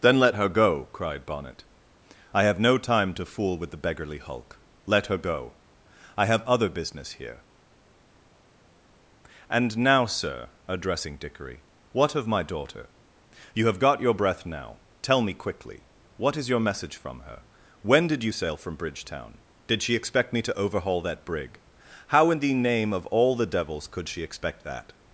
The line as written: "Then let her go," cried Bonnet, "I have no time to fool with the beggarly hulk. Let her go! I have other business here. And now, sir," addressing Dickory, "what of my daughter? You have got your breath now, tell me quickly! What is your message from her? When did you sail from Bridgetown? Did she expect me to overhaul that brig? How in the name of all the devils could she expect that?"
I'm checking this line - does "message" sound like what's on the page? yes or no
yes